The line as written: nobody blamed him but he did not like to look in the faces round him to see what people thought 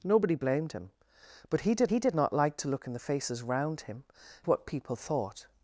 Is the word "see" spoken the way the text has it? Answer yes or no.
no